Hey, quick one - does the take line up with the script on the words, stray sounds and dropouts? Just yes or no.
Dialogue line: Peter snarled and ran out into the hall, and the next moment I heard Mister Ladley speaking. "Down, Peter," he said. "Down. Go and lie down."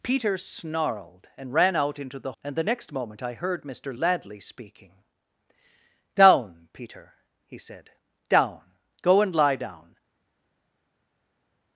no